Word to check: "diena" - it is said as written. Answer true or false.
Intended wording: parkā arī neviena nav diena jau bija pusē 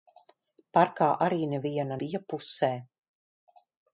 false